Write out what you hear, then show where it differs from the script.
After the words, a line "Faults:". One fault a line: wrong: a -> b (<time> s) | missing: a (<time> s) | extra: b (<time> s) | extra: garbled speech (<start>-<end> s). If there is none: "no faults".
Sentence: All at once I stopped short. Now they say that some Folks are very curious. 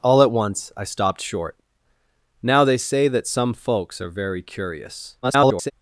All at once I stopped short. Now they say that some Folks are very curious. [garbled]
Faults:
extra: garbled speech (5.2-5.7 s)